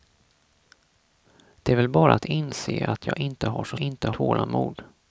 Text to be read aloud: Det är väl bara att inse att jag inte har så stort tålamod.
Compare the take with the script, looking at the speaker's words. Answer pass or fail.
fail